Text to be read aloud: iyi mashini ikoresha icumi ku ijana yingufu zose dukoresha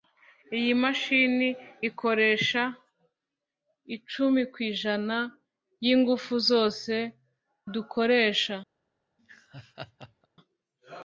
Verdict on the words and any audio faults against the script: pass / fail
fail